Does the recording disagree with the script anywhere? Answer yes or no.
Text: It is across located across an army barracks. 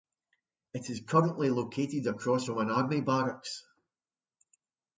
yes